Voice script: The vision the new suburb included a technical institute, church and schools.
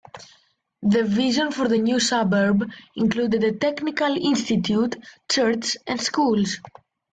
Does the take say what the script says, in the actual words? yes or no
no